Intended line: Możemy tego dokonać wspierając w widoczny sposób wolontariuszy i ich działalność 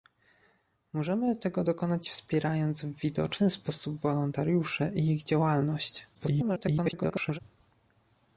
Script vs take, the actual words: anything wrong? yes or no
yes